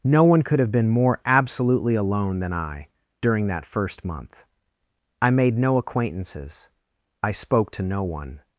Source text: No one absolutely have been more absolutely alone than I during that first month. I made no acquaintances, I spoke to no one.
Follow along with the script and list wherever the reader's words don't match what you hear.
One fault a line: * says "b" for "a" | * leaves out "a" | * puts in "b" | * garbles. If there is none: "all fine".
* says "could" for "absolutely"